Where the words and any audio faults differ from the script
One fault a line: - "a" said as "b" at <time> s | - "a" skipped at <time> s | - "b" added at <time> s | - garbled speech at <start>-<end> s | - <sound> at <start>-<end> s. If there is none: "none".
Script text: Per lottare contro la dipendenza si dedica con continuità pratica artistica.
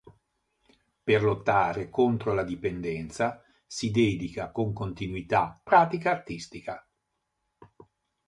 none